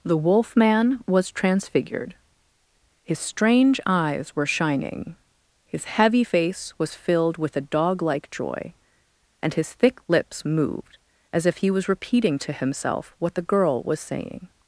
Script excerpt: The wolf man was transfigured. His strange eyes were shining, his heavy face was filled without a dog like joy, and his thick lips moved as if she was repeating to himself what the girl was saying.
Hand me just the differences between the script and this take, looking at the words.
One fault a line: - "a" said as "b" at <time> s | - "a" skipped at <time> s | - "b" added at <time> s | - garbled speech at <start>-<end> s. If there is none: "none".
- "without" said as "with" at 7.4 s
- "she" said as "he" at 11.6 s